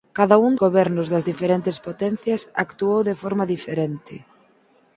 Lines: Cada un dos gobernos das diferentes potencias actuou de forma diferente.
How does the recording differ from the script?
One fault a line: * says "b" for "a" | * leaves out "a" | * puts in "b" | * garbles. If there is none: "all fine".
* leaves out "dos"